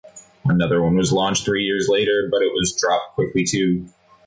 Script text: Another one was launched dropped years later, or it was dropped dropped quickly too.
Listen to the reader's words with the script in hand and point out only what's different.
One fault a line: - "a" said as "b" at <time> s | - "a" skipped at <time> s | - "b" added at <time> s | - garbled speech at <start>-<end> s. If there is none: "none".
- "dropped" said as "three" at 1.4 s
- "or" said as "but" at 2.3 s
- "dropped" skipped at 3.1 s